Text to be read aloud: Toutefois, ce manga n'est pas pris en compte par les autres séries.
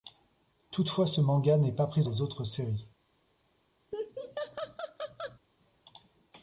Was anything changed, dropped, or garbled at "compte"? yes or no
yes